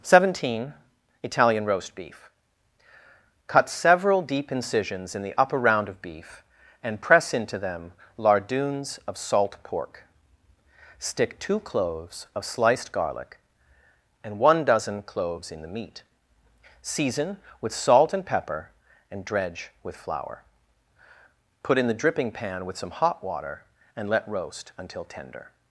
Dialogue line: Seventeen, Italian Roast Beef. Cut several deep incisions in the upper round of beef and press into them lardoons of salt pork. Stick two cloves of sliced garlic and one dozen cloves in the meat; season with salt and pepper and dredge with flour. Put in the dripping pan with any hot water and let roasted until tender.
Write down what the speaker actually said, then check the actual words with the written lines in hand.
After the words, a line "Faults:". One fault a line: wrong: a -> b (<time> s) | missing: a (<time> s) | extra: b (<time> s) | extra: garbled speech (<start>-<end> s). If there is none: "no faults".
Seventeen, Italian Roast Beef. Cut several deep incisions in the upper round of beef and press into them lardoons of salt pork. Stick two cloves of sliced garlic and one dozen cloves in the meat; season with salt and pepper and dredge with flour. Put in the dripping pan with some hot water and let roast until tender.
Faults:
wrong: any -> some (22.8 s)
wrong: roasted -> roast (24.3 s)